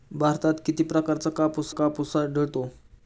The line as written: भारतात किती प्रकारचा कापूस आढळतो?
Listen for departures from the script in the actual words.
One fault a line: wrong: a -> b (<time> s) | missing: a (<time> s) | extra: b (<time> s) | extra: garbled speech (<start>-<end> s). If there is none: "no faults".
extra: कापूस (1.7 s)